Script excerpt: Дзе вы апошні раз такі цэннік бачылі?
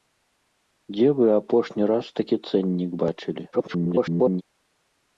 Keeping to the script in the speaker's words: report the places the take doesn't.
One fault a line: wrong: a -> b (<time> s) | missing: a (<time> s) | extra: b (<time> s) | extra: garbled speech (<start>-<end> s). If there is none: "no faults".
extra: garbled speech (3.5-4.4 s)